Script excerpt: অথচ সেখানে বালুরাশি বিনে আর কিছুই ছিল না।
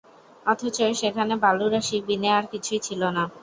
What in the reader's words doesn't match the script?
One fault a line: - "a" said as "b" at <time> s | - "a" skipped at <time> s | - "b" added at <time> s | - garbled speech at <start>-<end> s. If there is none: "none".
none